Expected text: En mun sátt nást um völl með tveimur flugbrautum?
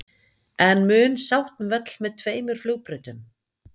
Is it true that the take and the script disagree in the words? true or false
true